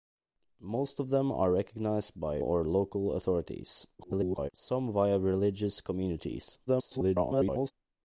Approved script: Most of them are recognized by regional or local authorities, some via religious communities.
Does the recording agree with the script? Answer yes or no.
no